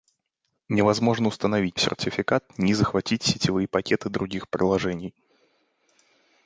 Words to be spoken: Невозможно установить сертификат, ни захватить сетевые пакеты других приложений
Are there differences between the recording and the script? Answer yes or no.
no